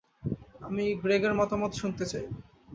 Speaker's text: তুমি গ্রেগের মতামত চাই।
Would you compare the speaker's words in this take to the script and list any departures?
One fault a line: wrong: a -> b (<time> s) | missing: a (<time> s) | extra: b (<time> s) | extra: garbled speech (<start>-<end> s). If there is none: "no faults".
wrong: তুমি -> আমি (0.6 s)
extra: শুনতে (1.8 s)